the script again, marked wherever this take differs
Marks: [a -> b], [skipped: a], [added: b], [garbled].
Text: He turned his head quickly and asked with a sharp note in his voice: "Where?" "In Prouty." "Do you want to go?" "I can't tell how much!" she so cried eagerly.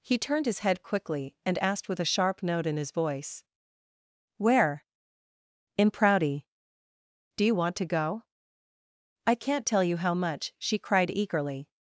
He turned his head quickly and asked with a sharp note in his voice: "Where?" "In Prouty." "Do you want to go?" "I can't tell [added: you] how much!" she [skipped: so] cried eagerly.